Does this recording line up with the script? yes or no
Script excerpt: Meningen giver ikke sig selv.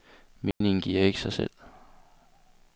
yes